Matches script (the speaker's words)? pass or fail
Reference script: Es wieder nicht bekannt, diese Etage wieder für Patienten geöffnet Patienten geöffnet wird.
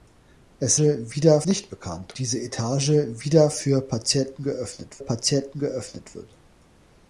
pass